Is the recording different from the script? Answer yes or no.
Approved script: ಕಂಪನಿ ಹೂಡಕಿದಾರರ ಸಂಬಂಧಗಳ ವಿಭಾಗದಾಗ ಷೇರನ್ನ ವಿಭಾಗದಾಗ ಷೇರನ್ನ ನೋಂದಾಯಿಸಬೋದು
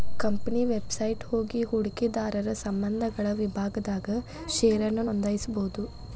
yes